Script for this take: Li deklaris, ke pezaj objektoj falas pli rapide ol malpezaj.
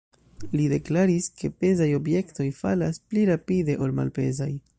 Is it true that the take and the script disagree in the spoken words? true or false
false